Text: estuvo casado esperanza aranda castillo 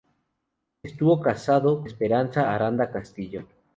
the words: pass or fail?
pass